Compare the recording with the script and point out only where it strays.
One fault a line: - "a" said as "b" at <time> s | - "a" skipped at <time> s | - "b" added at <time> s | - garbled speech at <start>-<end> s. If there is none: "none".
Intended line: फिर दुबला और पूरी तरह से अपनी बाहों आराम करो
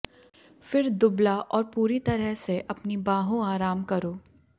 none